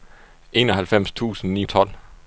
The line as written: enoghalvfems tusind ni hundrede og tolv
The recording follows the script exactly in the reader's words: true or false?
false